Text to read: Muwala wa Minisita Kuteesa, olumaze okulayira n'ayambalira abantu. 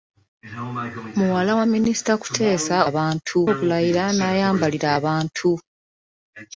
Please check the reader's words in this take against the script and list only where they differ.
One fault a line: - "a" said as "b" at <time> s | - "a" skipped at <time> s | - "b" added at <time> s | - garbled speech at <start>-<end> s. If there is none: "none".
- "olumaze" said as "abantu" at 2.9 s